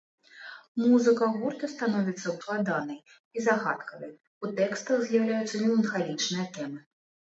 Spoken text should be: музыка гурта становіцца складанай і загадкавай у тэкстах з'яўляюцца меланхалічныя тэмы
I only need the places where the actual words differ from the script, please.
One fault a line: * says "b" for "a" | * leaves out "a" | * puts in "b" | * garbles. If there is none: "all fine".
all fine